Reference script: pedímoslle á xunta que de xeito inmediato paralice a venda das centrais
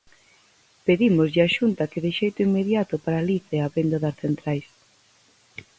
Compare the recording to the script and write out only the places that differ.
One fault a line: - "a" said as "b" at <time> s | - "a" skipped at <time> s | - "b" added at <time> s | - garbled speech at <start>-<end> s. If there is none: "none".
none